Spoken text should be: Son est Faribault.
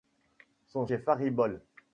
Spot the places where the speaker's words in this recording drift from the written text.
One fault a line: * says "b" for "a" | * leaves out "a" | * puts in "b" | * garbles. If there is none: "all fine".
all fine